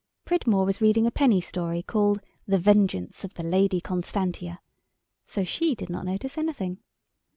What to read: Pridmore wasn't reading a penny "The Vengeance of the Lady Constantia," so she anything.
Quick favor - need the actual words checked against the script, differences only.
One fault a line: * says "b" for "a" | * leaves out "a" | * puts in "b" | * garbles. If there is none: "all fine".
* says "was" for "wasn't"
* puts in "story called"
* puts in "did not notice"